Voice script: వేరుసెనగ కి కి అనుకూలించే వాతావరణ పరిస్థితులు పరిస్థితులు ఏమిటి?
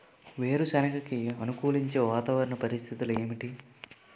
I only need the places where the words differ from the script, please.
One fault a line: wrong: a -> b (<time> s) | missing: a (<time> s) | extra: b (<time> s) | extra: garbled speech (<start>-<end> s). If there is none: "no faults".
missing: కి (1.2 s)
missing: పరిస్థితులు (3.1 s)